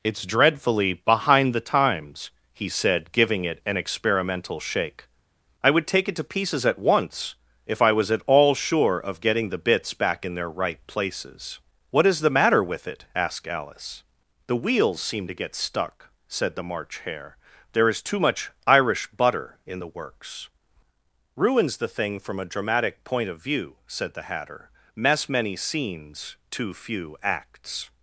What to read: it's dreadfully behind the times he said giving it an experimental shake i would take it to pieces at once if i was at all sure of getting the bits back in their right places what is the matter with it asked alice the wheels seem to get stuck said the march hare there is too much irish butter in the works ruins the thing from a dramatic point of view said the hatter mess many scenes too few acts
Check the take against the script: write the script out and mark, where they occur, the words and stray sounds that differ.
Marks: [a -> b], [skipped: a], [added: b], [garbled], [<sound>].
it's dreadfully behind the times he said giving it an experimental shake i would take it to pieces at once if i was at all sure of getting the bits back in their right places what is the matter with it asked alice the wheels seem to get stuck said the march hare there is too much irish butter in the works ruins the thing from a dramatic point of view said the hatter mess many scenes too few acts